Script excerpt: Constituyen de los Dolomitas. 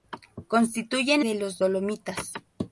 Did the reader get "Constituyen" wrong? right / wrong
right